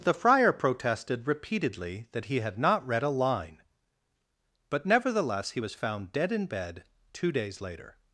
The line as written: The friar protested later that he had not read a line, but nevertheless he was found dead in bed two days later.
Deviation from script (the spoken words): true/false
true